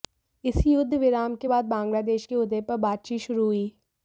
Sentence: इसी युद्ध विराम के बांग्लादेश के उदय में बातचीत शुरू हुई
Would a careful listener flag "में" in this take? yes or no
yes